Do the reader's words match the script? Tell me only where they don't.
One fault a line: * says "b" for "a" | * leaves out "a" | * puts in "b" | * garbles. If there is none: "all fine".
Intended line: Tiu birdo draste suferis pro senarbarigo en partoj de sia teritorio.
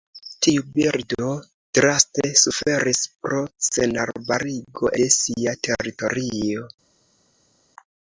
* leaves out "en partoj"